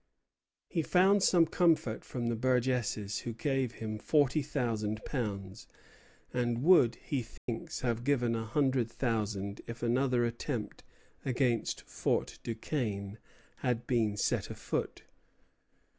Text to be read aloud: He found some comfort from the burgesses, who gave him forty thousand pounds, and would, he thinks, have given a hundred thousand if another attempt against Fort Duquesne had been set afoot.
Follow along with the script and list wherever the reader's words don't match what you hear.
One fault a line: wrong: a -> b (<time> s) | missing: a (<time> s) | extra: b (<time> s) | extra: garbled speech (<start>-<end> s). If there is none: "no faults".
no faults